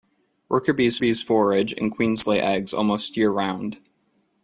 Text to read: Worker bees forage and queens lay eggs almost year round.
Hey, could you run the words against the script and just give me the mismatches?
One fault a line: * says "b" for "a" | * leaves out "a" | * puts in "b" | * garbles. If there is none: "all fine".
* puts in "bees"